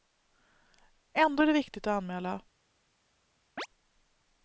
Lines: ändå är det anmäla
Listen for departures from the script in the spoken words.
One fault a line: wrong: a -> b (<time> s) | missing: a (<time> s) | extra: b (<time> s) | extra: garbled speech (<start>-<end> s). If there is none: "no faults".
extra: viktigt att (1.5 s)